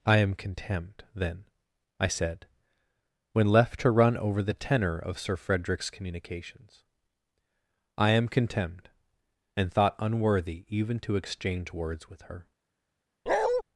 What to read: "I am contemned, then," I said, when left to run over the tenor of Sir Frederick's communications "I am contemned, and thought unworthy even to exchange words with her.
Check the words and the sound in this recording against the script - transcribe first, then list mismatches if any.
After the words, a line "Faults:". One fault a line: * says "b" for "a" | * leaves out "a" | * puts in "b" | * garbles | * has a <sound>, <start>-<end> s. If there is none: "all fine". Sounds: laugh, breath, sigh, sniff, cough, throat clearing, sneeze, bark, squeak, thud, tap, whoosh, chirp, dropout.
"I am contemned, then," I said, when left to run over the tenor of Sir Frederick's communications "I am contemned, and thought unworthy even to exchange words with her.
Faults:
* has a bark, 13.3-13.6 s